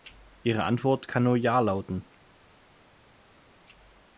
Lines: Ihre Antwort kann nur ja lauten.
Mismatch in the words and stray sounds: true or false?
false